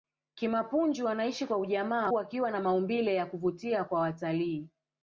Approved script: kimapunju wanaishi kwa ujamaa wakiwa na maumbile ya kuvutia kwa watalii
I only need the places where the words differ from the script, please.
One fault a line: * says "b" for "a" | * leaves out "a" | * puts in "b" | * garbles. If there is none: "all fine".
all fine